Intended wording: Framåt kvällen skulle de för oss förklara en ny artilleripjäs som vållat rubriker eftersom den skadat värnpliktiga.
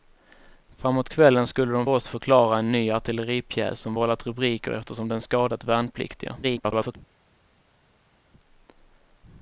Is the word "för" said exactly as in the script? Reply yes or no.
no